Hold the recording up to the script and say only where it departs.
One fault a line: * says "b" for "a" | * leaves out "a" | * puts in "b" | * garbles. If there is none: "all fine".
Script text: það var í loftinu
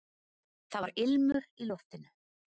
* puts in "ilmur"